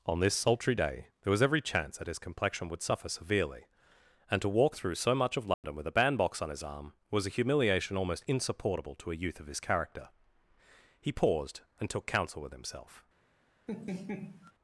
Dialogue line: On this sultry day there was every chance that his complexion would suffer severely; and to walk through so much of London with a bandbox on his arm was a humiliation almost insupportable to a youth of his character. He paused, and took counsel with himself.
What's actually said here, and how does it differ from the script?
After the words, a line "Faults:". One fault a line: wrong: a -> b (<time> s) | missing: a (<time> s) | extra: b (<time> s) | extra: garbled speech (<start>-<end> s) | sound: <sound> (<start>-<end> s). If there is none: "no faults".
On this sultry day there was every chance that his complexion would suffer severely; and to walk through so much of London with a bandbox on his arm was a humiliation almost insupportable to a youth of his character. He paused, and took counsel with himself.
Faults:
sound: dropout (5.5-5.6 s)
sound: laugh (13.7-14.5 s)